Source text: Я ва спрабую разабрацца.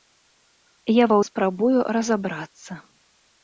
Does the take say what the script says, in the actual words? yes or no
yes